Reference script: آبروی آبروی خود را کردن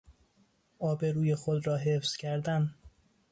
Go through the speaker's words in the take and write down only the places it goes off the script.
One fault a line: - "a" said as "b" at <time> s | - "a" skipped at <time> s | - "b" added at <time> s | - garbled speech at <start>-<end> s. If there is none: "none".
- "آبروی" skipped at 1.4 s
- "حفظ" added at 1.8 s